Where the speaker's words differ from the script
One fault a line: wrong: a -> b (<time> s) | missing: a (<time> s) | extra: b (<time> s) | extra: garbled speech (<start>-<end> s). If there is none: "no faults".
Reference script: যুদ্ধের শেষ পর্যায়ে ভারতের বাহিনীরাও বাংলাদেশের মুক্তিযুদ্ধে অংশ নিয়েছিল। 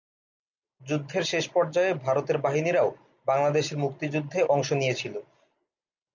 no faults